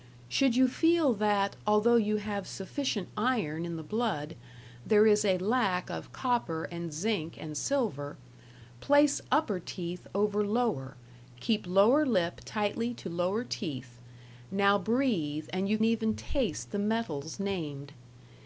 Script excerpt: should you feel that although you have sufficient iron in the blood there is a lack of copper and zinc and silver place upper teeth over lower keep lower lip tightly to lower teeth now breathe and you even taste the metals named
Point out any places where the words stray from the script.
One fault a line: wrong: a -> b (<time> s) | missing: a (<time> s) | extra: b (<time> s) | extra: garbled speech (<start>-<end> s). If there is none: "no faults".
no faults